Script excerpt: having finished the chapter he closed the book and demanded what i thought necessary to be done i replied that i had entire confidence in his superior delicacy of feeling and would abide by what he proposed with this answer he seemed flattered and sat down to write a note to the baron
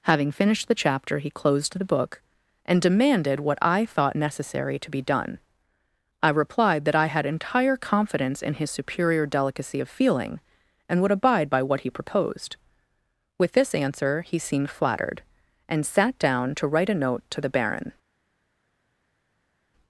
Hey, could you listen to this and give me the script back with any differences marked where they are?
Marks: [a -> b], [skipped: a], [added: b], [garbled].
having finished the chapter he closed the book and demanded what i thought necessary to be done i replied that i had entire confidence in his superior delicacy of feeling and would abide by what he proposed with this answer he seemed flattered and sat down to write a note to the baron